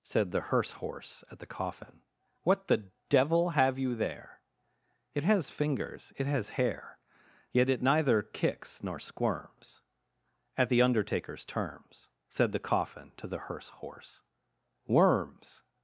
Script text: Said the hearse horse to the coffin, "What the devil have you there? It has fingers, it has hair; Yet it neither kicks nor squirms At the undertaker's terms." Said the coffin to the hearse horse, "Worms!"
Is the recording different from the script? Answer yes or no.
yes